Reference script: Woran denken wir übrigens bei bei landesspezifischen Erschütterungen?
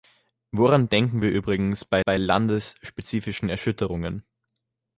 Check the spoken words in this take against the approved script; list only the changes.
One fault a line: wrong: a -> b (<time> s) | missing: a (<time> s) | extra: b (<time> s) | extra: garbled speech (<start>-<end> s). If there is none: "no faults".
no faults